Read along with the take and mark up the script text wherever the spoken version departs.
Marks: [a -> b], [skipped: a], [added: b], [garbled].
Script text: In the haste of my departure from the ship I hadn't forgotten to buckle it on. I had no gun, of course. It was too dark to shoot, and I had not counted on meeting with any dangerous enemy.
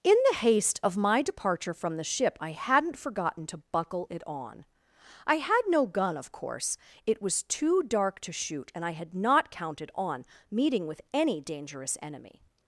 In the haste of my departure from the ship I hadn't forgotten to buckle it on. I had no gun, of course. It was too dark to shoot, and I had not counted on meeting with any dangerous enemy.